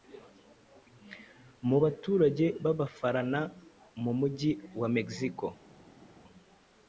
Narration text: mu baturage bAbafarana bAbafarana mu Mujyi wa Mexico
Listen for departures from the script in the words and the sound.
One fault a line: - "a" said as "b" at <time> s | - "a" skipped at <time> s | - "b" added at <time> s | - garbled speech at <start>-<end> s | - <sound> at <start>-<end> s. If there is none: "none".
- "bAbafarana" skipped at 3.4 s